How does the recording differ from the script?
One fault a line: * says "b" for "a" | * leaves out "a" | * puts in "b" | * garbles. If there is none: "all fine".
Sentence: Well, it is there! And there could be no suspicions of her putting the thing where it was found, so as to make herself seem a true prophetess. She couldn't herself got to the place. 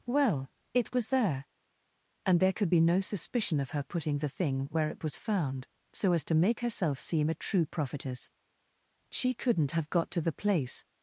* says "was" for "is"
* says "suspicion" for "suspicions"
* says "have" for "herself"